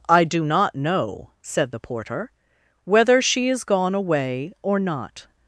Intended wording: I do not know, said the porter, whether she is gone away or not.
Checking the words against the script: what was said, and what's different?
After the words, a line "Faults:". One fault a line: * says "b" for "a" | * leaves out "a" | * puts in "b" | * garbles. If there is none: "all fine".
I do not know, said the porter, whether she is gone away or not.
Faults:
all fine